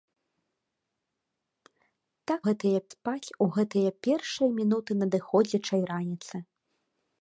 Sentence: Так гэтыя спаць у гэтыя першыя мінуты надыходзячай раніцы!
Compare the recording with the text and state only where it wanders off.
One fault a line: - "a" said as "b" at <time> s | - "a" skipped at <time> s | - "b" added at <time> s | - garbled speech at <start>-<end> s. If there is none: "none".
none